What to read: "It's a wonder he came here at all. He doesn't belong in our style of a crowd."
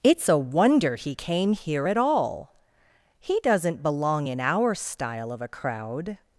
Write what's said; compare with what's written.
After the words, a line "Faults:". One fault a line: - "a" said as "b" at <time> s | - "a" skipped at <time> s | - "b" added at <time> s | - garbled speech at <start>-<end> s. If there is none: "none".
"It's a wonder he came here at all. He doesn't belong in our style of a crowd."
Faults:
none